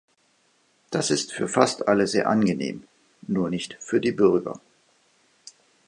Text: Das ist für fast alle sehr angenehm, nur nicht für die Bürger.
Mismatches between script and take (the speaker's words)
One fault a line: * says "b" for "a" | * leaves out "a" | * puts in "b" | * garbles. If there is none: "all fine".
all fine